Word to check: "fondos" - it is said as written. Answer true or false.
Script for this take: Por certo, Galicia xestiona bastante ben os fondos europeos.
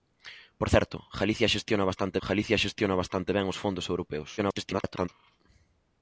true